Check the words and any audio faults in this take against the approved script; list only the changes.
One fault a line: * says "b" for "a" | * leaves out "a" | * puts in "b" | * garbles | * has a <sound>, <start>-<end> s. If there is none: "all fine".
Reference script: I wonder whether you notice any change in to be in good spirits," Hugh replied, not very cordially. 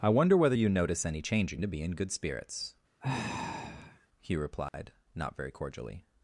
* has a sigh, 3.0-4.1 s
* has a dropout, 4.7-4.7 s